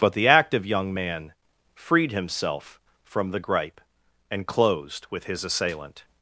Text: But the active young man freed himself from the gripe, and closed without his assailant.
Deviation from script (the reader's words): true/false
true